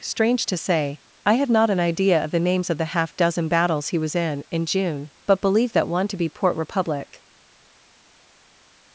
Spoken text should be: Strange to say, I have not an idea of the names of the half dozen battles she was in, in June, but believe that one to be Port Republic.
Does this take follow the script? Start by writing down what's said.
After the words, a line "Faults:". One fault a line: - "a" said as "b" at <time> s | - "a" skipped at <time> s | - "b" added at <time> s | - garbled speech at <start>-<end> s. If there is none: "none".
Strange to say, I have not an idea of the names of the half dozen battles he was in, in June, but believe that one to be Port Republic.
Faults:
- "she" said as "he" at 3.9 s